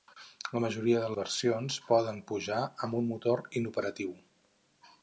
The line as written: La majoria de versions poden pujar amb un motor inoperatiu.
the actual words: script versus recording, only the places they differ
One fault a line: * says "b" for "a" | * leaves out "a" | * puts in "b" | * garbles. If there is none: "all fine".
all fine